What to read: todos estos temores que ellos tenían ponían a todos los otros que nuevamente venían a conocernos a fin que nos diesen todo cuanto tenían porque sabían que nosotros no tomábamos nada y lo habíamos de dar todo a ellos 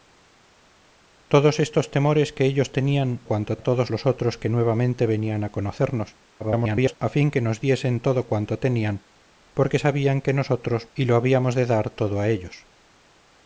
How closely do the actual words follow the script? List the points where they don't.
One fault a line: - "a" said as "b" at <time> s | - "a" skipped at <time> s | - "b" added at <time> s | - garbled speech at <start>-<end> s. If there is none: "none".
- "ponían" said as "cuanto" at 3.2 s
- garbled speech at 6.4-7.0 s
- "no tomábamos nada" skipped at 10.9 s